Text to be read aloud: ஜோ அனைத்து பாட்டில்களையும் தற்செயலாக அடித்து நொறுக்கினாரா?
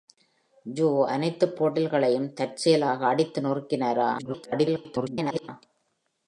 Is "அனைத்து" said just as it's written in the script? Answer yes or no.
yes